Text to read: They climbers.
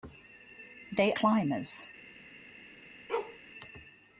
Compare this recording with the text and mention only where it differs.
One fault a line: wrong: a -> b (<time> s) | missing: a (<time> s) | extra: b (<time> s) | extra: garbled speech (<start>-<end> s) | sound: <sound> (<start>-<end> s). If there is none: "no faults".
sound: bark (3.1-3.4 s)